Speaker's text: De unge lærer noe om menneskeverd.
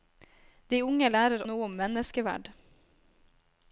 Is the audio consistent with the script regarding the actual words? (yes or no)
yes